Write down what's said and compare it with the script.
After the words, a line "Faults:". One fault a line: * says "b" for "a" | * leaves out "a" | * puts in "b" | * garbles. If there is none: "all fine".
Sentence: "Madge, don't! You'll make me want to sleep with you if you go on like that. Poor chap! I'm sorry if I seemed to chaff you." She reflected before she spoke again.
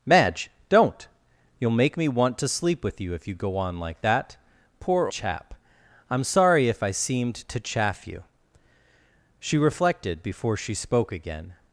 "Madge, don't! You'll make me want to sleep with you if you go on like that. Poor chap! I'm sorry if I seemed to chaff you." She reflected before she spoke again.
Faults:
all fine